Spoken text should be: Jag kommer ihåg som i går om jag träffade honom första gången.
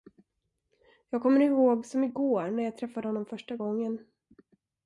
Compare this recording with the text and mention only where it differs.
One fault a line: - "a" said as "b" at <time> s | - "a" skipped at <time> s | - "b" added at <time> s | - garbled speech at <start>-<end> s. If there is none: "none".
- "om" said as "när" at 2.5 s